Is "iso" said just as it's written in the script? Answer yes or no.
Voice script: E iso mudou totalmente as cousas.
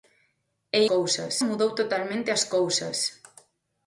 no